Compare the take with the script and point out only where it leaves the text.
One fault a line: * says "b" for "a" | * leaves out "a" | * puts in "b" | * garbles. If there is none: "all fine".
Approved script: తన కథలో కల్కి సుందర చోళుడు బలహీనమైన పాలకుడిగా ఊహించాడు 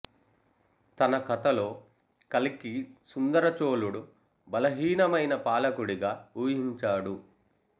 all fine